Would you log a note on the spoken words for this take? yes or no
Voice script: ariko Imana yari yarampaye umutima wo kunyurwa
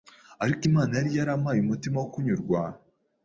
no